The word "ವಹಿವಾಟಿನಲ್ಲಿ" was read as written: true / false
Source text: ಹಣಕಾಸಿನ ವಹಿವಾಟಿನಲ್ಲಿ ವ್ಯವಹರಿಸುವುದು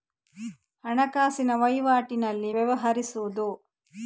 true